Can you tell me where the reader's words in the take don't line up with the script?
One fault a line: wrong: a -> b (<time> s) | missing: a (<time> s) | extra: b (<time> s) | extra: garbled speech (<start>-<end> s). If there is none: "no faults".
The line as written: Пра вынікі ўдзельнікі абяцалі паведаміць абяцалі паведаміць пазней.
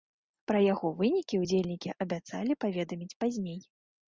extra: яго (0.7 s)
missing: абяцалі паведаміць (3.2 s)